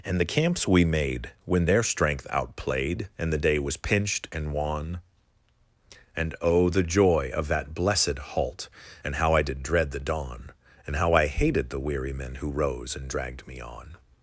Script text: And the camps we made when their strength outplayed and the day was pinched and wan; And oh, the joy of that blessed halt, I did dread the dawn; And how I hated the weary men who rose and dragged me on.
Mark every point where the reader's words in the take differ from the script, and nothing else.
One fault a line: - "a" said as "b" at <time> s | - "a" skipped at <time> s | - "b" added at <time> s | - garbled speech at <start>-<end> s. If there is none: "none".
- "and how" added at 9.0 s